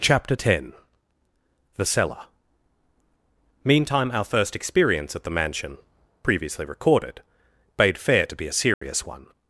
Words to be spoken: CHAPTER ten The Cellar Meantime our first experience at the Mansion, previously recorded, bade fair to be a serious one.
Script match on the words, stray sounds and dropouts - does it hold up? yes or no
no